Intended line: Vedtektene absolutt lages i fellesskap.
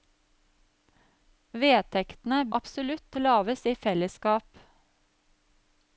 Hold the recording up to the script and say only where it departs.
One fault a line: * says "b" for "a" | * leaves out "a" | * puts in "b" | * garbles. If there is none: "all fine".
all fine